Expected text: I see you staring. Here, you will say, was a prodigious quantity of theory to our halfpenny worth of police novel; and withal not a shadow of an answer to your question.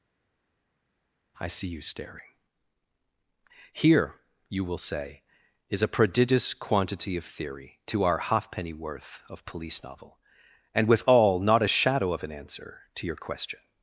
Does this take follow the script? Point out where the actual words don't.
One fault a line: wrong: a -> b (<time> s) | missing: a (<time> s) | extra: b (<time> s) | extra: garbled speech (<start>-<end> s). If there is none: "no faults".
wrong: was -> is (5.7 s)